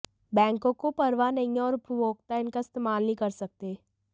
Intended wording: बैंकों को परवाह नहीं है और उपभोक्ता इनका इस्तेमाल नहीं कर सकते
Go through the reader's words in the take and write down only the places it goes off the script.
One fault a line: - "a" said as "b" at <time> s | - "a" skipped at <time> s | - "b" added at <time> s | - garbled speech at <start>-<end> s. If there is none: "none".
none